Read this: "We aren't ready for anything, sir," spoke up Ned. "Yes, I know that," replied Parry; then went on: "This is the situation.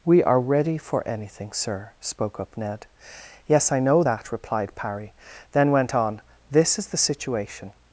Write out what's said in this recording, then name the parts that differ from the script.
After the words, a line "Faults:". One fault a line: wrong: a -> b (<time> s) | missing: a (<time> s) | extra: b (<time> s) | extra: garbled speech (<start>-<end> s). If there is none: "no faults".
"We are ready for anything, sir," spoke up Ned. "Yes, I know that," replied Parry; then went on: "This is the situation.
Faults:
wrong: aren't -> are (0.2 s)